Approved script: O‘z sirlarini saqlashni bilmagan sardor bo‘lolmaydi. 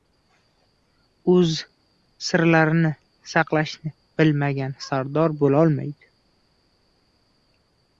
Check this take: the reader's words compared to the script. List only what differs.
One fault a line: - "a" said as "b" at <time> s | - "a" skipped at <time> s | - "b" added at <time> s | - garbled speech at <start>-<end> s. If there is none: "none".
none